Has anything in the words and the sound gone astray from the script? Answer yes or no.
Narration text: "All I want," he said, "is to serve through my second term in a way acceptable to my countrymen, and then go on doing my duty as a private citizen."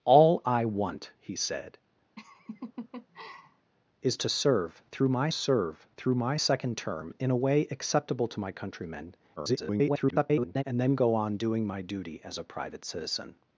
yes